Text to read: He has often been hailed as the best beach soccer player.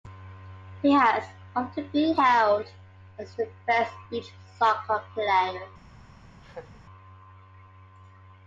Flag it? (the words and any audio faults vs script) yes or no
yes